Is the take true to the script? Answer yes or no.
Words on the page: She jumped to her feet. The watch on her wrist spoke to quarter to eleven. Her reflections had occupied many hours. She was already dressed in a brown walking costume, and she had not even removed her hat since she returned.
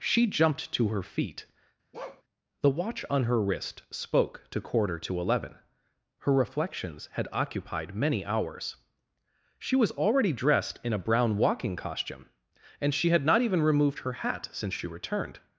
yes